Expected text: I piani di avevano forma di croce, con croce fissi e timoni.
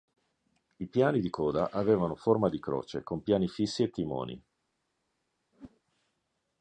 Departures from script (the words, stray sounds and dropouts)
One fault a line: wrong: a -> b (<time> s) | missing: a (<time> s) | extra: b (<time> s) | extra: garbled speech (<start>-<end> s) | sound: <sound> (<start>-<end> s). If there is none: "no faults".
extra: coda (1.3 s)
wrong: croce -> piani (3.2 s)
sound: whoosh (5.5-5.8 s)